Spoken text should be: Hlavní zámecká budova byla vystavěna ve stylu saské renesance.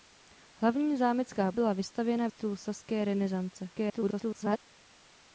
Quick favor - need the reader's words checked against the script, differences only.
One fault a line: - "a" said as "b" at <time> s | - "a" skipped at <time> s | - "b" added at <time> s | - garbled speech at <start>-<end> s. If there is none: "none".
- "budova" skipped at 1.5 s
- "ve" skipped at 2.3 s
- garbled speech at 3.7-4.6 s